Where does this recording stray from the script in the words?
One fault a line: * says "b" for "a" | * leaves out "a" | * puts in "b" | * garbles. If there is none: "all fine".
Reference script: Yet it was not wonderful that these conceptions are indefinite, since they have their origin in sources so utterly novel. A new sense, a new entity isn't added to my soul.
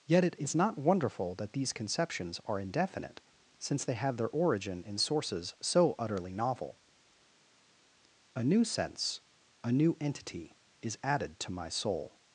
* says "is" for "was"
* says "is" for "isn't"